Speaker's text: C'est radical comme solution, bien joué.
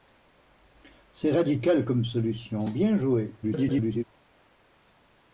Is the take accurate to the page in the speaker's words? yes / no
no